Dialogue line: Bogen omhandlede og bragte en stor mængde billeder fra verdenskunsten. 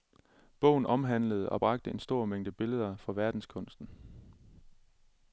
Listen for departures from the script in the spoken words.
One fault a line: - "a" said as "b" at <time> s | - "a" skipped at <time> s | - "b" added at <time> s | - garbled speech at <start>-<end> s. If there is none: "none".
none